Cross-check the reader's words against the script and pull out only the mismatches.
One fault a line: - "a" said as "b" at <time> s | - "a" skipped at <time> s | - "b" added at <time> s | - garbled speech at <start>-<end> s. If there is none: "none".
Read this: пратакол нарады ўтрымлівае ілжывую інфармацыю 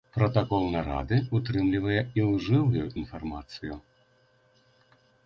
none